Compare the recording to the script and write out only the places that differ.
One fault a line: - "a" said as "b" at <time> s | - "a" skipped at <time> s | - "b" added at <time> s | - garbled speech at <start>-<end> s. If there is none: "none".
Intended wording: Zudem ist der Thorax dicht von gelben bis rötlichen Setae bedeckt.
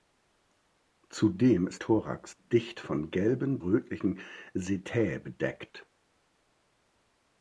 - "der" skipped at 1.8 s
- "bis" skipped at 3.6 s